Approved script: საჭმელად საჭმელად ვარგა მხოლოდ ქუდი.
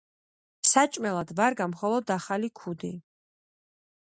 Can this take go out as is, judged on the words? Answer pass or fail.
fail